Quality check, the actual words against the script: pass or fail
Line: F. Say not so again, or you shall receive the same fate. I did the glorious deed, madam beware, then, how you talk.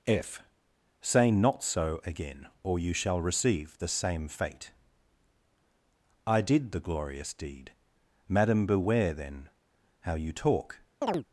pass